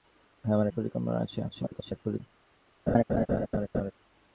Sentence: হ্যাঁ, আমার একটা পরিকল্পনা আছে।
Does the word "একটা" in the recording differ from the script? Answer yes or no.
yes